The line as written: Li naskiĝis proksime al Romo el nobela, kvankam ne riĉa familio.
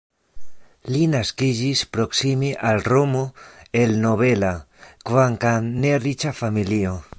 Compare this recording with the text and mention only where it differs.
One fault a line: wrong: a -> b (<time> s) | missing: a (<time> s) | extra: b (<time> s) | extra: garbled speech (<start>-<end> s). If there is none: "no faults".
no faults